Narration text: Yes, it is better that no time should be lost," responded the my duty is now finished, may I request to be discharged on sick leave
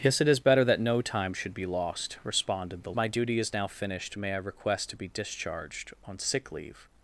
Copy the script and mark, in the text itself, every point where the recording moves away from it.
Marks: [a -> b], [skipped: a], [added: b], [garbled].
Yes, it is better that no time should be lost," responded the my duty is now finished, may I request to be discharged on sick leave